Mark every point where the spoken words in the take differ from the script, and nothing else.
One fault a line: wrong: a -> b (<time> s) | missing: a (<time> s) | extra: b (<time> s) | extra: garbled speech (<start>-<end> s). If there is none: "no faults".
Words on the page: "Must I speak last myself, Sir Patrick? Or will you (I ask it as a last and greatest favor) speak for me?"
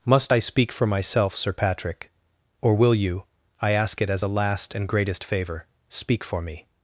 wrong: last -> for (0.7 s)